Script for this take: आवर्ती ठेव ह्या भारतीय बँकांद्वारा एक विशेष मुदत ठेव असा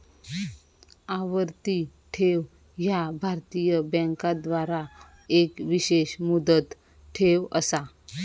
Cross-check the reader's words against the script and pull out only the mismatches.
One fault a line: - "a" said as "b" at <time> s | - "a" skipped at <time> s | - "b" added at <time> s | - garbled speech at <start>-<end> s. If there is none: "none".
none